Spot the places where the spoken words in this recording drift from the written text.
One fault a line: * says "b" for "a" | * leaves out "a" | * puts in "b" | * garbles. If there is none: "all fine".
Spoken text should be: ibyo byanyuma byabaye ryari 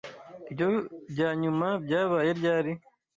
all fine